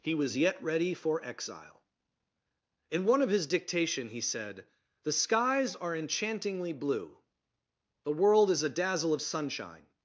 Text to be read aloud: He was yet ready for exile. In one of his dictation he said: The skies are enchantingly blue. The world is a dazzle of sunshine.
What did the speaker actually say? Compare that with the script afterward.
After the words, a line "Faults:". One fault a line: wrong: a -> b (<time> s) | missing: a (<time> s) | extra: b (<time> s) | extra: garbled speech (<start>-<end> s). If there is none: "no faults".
He was yet ready for exile. In one of his dictation he said: The skies are enchantingly blue. The world is a dazzle of sunshine.
Faults:
no faults